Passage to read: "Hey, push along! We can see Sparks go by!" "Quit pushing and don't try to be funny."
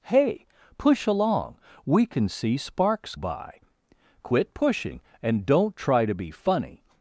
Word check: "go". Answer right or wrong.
wrong